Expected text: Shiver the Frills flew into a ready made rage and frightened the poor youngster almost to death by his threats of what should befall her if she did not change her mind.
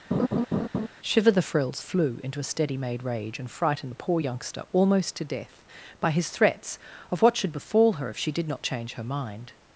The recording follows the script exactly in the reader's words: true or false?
false